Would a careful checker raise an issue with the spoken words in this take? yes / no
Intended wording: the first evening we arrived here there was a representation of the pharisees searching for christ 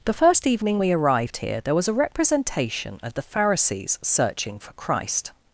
no